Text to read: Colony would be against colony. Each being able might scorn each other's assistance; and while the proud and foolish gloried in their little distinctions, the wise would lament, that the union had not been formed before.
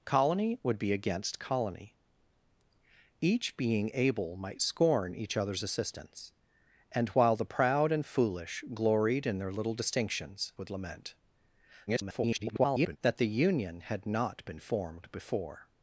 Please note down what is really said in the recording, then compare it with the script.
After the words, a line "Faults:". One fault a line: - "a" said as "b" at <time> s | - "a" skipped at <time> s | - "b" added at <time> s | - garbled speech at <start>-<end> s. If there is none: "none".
Colony would be against colony. Each being able might scorn each other's assistance; and while the proud and foolish gloried in their little distinctions, would lament, [garbled] that the union had not been formed before.
Faults:
- "the wise" skipped at 10.5 s
- garbled speech at 11.9-13.0 s